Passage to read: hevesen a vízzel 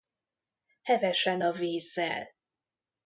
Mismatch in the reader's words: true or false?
false